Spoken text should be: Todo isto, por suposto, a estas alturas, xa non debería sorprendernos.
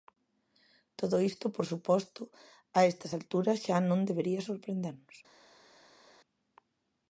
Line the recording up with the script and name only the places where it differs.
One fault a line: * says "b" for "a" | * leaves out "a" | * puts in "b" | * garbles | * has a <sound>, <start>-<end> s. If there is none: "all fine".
all fine